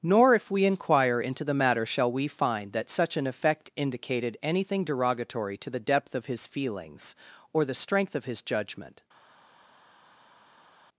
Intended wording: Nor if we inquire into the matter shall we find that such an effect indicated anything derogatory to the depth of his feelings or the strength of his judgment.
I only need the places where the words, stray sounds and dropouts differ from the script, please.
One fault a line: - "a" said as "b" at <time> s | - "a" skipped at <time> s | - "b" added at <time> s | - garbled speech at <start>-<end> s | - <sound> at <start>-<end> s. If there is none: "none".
none